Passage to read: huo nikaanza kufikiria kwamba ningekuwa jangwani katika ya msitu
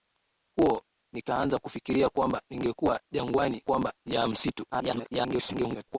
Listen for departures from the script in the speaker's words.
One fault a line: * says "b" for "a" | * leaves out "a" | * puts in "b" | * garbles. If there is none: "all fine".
* says "kwamba" for "katika"
* garbles